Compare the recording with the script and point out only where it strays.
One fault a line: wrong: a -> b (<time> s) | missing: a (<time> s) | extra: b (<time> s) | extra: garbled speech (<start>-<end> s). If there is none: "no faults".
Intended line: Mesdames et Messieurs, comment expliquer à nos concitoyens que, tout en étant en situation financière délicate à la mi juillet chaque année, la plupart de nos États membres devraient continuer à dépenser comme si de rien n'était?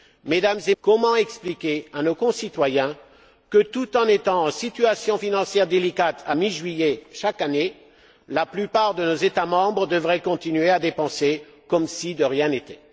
missing: Messieurs (0.8 s)
missing: la (6.4 s)